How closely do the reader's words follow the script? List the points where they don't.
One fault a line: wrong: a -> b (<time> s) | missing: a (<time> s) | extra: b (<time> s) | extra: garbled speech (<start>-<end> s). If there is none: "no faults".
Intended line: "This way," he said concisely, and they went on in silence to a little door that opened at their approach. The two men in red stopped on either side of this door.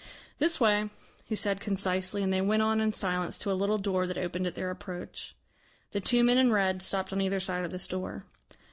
no faults